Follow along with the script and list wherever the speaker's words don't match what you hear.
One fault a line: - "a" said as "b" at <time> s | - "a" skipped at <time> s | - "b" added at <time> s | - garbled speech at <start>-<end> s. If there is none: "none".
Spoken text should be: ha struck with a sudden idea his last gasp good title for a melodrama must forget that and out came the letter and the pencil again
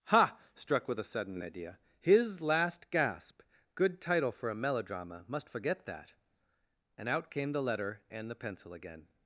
none